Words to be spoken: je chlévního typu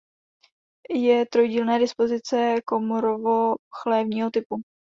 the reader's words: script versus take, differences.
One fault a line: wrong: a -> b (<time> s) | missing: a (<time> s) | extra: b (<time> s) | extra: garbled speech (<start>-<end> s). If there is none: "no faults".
extra: trojdílné dispozice komorovo (1.2 s)